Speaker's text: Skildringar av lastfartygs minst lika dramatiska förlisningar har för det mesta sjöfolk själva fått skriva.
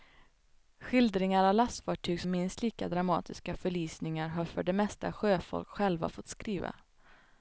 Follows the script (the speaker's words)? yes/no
yes